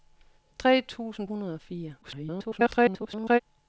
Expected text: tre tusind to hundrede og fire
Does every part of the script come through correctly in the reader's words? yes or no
no